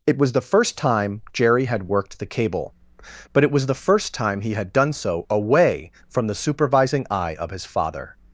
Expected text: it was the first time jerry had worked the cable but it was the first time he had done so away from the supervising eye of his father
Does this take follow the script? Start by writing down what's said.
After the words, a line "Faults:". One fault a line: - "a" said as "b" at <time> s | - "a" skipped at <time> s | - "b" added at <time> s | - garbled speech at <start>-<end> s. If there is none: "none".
it was the first time jerry had worked the cable but it was the first time he had done so away from the supervising eye of his father
Faults:
none